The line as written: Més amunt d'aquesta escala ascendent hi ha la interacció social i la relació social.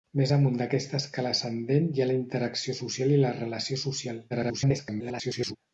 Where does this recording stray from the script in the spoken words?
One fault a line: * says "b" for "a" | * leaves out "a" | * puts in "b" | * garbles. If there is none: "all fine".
* garbles